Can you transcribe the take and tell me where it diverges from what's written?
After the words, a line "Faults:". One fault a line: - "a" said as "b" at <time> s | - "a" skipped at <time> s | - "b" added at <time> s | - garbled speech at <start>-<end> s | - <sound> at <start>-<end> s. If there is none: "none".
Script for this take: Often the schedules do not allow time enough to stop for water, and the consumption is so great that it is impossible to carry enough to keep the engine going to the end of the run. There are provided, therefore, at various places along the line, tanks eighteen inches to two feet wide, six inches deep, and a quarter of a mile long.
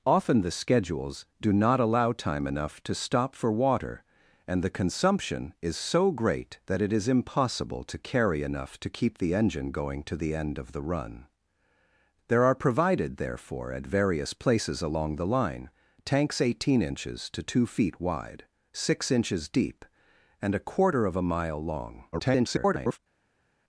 Often the schedules do not allow time enough to stop for water, and the consumption is so great that it is impossible to carry enough to keep the engine going to the end of the run. There are provided, therefore, at various places along the line, tanks eighteen inches to two feet wide, six inches deep, and a quarter of a mile long. [garbled]
Faults:
- garbled speech at 22.1-23.0 s